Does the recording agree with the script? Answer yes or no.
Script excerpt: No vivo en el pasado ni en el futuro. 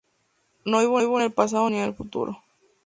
no